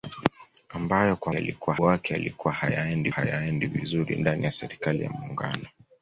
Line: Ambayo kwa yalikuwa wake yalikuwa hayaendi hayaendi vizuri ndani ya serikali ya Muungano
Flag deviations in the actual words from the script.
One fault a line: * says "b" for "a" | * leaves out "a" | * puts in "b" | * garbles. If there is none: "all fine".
all fine